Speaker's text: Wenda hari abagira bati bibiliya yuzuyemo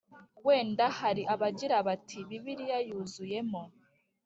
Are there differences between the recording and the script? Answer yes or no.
no